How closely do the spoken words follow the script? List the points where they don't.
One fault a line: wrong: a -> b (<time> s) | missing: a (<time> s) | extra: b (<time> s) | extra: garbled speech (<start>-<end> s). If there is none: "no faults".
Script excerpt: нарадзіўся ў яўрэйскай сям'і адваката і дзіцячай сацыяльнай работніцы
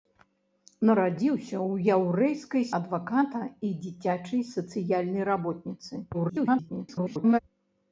missing: сям'і (2.7 s)
extra: garbled speech (6.1-7.4 s)